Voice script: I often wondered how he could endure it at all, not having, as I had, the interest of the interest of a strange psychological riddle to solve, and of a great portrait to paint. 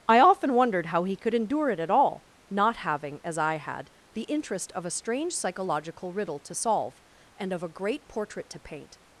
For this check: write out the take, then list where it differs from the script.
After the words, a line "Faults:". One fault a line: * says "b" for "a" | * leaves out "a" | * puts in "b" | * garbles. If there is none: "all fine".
I often wondered how he could endure it at all, not having, as I had, the interest of a strange psychological riddle to solve, and of a great portrait to paint.
Faults:
* leaves out "the interest of"